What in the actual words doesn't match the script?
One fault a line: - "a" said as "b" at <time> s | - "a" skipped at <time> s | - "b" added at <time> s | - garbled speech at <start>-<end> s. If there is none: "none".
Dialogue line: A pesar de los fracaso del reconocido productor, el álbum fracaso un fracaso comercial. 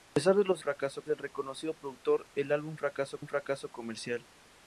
none